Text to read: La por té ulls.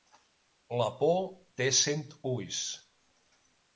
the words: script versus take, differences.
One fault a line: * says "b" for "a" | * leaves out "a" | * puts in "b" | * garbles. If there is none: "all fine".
* puts in "cent"